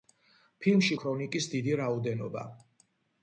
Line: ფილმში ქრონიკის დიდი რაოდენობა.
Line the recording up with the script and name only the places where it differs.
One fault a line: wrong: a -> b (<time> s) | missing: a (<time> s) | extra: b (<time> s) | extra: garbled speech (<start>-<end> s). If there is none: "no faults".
no faults